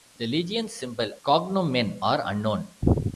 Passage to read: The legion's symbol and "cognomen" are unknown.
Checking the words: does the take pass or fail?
fail